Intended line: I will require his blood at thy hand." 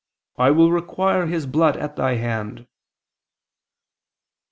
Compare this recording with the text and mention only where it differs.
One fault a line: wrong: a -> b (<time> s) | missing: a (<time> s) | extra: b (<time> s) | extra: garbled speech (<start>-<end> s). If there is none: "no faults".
no faults